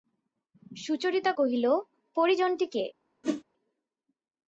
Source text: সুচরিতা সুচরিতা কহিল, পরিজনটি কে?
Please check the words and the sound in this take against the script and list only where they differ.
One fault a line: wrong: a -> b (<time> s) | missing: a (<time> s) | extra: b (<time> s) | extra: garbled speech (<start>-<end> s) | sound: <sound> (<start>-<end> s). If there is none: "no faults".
missing: সুচরিতা (1.3 s)
sound: whoosh (3.2-3.4 s)